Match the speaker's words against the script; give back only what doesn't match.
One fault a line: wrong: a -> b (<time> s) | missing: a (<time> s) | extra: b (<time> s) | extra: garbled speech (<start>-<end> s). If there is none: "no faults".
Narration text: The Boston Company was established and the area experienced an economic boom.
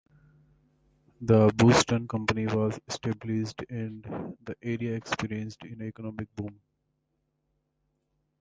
no faults